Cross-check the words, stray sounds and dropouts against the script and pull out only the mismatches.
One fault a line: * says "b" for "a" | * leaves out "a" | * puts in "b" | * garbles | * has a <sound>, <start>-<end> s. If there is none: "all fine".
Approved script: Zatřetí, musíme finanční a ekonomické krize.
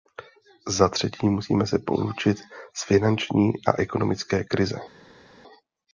* puts in "se poučit z"